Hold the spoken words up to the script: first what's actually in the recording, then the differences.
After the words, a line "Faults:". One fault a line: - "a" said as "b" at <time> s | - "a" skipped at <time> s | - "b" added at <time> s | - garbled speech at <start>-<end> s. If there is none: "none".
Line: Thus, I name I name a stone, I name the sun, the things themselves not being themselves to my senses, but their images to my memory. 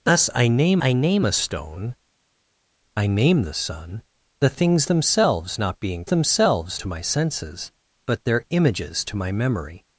Thus, I name I name a stone, I name the sun, the things themselves not being themselves to my senses, but their images to my memory.
Faults:
none